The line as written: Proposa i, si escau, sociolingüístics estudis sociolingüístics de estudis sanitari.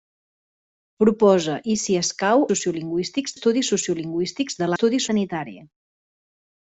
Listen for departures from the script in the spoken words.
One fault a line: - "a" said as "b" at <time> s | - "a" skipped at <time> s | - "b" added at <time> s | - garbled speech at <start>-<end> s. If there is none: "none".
none